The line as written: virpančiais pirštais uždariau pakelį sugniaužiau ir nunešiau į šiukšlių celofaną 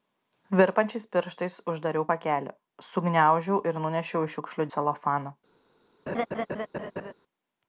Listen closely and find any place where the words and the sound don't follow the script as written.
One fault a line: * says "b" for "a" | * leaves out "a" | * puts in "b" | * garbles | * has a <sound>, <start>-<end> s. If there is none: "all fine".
* has a laugh, 6.1-7.1 s